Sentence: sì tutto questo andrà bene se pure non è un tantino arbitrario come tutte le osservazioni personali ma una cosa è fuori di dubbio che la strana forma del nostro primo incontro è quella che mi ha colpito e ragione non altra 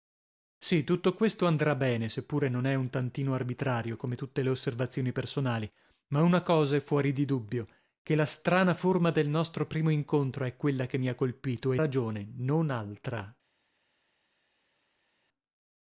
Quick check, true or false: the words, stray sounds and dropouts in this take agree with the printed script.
true